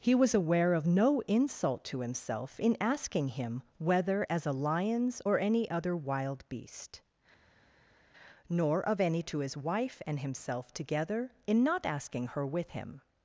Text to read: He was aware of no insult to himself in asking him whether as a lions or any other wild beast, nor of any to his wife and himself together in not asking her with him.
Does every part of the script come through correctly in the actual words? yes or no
yes